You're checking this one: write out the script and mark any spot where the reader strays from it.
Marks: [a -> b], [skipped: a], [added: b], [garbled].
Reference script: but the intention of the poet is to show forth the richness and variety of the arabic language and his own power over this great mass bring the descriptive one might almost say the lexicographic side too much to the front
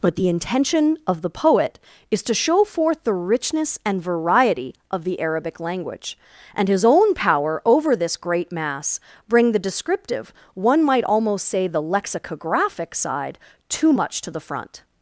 but the intention of the poet is to show forth the richness and variety of the arabic language and his own power over this great mass bring the descriptive one might almost say the lexicographic side too much to the front